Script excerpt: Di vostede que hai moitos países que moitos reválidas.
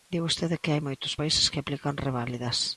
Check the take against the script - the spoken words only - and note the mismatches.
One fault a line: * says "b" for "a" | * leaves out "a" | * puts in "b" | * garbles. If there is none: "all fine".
* says "aplican" for "moitos"